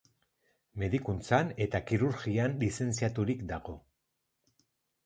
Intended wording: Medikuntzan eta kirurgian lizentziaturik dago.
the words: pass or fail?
pass